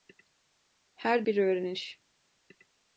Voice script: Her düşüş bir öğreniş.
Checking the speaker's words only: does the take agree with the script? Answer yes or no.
no